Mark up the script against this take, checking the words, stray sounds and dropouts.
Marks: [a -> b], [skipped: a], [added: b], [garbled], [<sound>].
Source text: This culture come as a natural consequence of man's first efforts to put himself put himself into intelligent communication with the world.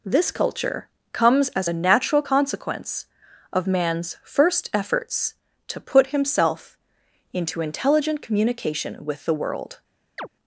This culture [come -> comes] as a natural consequence of man's first efforts to put himself [skipped: put himself] into intelligent communication with the world. [chirp]